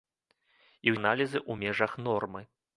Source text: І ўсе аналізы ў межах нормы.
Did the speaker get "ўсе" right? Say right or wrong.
wrong